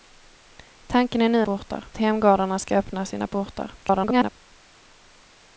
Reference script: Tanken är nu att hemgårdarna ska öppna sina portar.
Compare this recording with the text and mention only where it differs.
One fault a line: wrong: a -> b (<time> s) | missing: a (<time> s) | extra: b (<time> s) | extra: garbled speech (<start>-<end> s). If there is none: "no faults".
wrong: att -> portar (1.4 s)
extra: garbled speech (3.8-4.3 s)